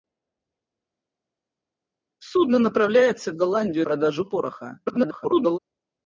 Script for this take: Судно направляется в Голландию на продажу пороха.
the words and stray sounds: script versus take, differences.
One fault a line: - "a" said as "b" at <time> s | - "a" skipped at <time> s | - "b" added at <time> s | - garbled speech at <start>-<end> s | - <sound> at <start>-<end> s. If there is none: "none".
- "на" skipped at 3.9 s
- garbled speech at 4.9-5.6 s